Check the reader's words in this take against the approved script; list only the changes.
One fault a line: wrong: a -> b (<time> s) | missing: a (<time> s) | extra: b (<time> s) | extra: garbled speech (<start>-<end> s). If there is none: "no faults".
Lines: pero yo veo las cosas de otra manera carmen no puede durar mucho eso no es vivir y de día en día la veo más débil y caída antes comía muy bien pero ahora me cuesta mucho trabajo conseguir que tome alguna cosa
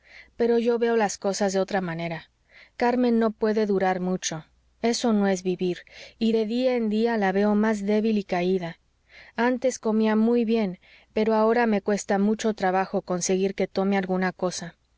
no faults